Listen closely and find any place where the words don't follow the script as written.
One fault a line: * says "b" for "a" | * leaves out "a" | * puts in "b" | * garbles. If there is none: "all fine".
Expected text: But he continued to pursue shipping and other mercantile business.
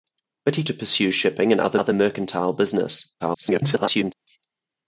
* leaves out "continued"
* puts in "other"
* garbles